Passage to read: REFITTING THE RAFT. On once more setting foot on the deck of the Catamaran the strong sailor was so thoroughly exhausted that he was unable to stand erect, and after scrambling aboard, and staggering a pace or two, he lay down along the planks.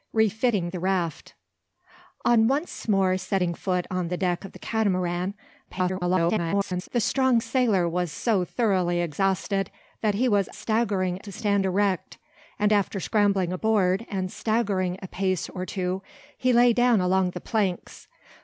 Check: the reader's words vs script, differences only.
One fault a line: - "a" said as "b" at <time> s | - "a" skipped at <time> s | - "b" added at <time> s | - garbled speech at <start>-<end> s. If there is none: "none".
- garbled speech at 5.7-6.9 s
- "unable" said as "staggering" at 10.5 s